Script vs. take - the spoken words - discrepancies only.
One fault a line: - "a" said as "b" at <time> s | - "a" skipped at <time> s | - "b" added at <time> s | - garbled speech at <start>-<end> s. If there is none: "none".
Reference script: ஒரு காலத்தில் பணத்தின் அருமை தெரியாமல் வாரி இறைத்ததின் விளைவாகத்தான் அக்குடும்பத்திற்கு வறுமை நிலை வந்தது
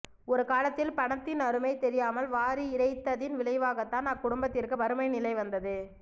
none